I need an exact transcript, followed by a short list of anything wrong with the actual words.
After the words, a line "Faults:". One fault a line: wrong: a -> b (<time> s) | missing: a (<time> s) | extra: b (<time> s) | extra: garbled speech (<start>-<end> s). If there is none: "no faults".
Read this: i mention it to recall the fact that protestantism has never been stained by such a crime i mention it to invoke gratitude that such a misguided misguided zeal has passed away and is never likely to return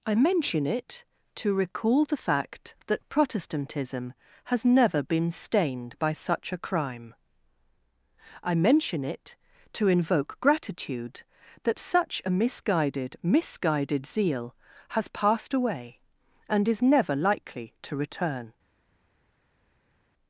i mention it to recall the fact that protestantism has never been stained by such a crime i mention it to invoke gratitude that such a misguided misguided zeal has passed away and is never likely to return
Faults:
no faults